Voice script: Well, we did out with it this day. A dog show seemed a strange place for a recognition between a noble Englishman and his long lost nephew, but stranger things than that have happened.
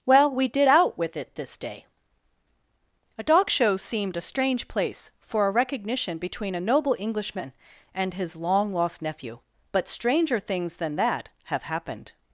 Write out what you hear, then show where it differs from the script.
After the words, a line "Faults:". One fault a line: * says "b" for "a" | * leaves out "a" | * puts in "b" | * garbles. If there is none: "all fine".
Well, we did out with it this day. A dog show seemed a strange place for a recognition between a noble Englishman and his long lost nephew, but stranger things than that have happened.
Faults:
all fine